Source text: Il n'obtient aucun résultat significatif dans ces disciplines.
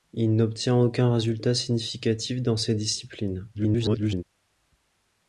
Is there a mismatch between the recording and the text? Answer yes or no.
yes